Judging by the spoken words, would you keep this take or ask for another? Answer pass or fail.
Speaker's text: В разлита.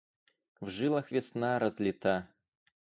fail